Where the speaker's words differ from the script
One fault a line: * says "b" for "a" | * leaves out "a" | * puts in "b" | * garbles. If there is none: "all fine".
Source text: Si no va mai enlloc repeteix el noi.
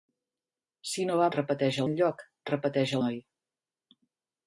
* says "repeteix" for "mai"
* leaves out "el"